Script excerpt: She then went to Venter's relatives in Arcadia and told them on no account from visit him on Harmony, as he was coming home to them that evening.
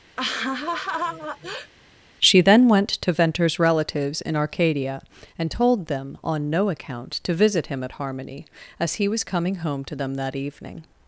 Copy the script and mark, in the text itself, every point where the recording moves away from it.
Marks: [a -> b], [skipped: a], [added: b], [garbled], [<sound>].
[laugh] She then went to Venter's relatives in Arcadia and told them on no account [from -> to] visit him [on -> at] Harmony, as he was coming home to them that evening.